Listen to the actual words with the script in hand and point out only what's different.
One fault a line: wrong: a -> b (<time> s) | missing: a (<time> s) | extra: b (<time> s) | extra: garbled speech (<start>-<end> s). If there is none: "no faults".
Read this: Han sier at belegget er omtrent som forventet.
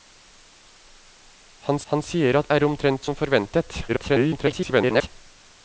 extra: han (1.9 s)
missing: belegget (2.5 s)
extra: garbled speech (3.9-5.1 s)